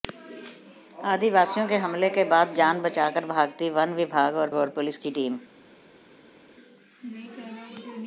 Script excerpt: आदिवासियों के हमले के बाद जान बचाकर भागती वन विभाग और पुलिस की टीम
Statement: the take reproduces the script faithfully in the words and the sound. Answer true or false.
false